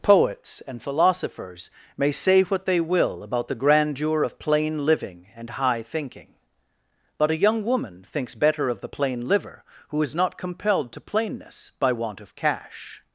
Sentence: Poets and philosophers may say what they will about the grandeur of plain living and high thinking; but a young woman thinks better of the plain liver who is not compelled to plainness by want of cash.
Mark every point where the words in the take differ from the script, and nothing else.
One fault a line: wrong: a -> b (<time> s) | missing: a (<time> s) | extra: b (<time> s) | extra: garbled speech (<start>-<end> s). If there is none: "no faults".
no faults